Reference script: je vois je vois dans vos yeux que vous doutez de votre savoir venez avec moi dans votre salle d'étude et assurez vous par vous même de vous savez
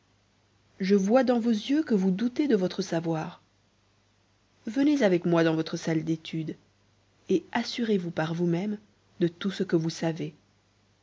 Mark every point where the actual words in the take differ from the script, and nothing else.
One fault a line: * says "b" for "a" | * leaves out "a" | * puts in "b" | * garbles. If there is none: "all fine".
* leaves out "je vois"
* puts in "tout ce que"